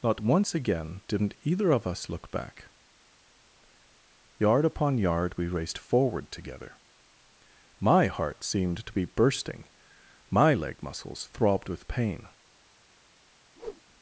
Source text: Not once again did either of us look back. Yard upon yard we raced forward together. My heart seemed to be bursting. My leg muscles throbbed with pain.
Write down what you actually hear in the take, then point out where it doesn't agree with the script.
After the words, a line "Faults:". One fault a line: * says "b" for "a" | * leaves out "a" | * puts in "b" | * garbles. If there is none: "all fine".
Not once again didn't either of us look back. Yard upon yard we raced forward together. My heart seemed to be bursting. My leg muscles throbbed with pain.
Faults:
* says "didn't" for "did"